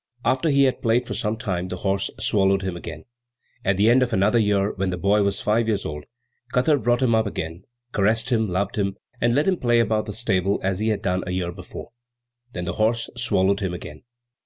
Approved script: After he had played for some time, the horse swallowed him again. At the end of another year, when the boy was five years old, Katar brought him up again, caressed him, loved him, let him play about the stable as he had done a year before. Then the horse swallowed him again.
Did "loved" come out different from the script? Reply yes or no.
no